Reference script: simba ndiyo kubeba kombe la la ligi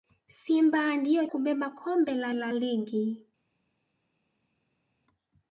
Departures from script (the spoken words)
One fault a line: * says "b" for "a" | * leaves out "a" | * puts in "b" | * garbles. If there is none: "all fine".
all fine